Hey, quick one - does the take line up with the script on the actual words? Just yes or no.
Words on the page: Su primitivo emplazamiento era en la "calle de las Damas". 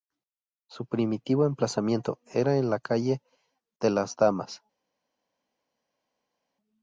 yes